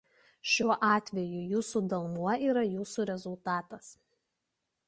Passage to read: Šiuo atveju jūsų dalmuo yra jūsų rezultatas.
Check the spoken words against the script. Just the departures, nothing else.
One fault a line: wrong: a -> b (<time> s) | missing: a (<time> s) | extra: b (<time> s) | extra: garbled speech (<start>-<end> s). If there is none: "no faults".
no faults